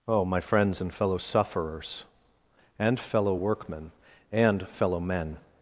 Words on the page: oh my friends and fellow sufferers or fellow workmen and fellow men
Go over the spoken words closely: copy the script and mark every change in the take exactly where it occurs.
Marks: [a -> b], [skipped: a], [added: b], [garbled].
oh my friends and fellow sufferers [or -> and] fellow workmen and fellow men